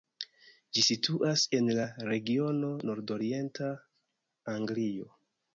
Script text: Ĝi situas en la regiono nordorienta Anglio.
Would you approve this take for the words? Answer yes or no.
yes